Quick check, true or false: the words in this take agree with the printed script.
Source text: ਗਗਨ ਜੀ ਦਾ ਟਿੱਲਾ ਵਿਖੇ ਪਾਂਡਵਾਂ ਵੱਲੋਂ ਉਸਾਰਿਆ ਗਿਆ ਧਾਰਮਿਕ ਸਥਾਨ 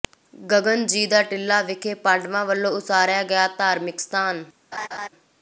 true